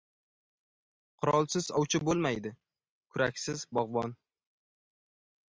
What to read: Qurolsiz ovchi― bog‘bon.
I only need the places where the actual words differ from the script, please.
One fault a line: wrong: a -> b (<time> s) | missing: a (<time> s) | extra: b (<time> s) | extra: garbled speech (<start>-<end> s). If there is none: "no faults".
extra: bo‘lmaydi kuraksiz (2.1 s)